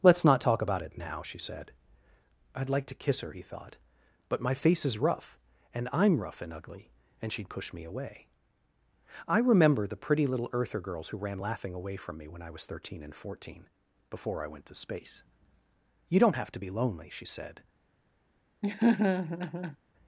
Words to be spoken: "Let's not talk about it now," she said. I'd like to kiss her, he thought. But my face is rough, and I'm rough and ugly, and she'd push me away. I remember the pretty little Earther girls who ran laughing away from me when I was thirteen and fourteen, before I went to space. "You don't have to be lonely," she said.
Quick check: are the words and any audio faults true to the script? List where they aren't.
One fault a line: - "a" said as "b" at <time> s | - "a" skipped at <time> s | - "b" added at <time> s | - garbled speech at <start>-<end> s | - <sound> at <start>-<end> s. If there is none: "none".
- laugh at 18.6-19.8 s